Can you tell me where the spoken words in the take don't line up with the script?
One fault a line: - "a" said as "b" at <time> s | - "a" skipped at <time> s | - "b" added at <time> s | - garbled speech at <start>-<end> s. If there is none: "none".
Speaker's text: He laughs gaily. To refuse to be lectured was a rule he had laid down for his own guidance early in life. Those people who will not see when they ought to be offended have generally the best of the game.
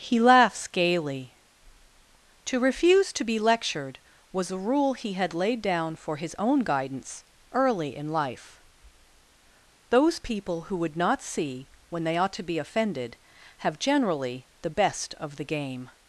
- "will" said as "would" at 10.8 s